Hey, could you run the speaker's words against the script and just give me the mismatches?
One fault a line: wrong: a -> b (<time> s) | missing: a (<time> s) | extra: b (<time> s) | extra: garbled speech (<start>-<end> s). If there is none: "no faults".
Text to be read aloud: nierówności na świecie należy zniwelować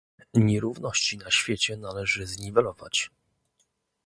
no faults